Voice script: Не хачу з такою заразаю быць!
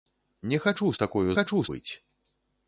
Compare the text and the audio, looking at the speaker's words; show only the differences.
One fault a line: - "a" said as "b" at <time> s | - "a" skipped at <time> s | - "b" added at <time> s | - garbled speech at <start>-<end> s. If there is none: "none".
- "заразаю" said as "хачу" at 1.3 s